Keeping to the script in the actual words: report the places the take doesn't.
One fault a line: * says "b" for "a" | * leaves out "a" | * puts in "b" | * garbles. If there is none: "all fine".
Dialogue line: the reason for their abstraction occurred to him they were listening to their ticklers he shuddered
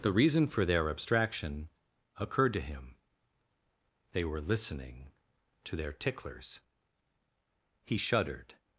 all fine